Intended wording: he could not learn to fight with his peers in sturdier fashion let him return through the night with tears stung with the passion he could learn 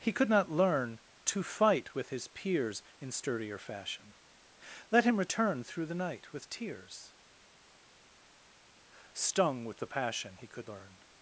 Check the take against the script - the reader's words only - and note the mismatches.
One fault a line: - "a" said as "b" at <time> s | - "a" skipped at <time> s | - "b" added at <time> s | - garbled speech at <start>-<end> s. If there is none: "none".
none